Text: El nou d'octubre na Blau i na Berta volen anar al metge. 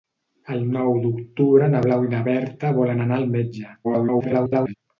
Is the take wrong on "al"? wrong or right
right